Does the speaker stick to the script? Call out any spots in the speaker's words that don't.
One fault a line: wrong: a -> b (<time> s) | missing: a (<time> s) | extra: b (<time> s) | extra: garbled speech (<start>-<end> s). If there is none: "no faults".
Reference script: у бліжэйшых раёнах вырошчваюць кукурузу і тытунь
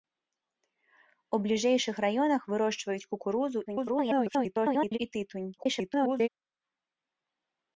extra: garbled speech (3.7-5.0 s)
extra: garbled speech (5.6-6.3 s)